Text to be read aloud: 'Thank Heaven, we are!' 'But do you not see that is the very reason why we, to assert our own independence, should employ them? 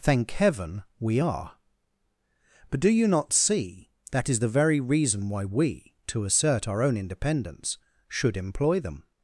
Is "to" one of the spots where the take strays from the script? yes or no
no